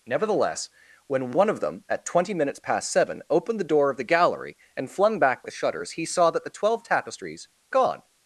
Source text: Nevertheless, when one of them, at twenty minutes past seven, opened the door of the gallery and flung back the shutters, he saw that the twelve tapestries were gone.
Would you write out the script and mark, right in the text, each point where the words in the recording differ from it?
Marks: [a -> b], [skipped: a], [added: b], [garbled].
Nevertheless, when one of them, at twenty minutes past seven, opened the door of the gallery and flung back the shutters, he saw that the twelve tapestries [skipped: were] gone.